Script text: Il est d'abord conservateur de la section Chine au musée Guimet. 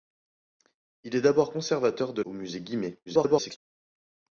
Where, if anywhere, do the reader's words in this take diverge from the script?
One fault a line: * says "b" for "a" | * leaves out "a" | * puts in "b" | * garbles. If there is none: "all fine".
* leaves out "la section Chine"
* garbles